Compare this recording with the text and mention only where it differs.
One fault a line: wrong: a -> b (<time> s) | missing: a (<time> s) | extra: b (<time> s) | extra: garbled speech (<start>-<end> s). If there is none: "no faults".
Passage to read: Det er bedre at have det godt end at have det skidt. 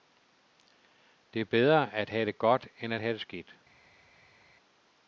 no faults